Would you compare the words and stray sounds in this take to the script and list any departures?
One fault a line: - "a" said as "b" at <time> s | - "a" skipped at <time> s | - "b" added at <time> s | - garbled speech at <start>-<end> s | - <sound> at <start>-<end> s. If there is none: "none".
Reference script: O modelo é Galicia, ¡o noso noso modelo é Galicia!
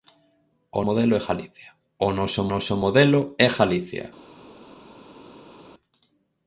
none